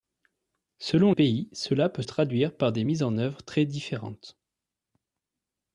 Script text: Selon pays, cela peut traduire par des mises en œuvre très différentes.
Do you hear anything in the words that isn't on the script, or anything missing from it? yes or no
no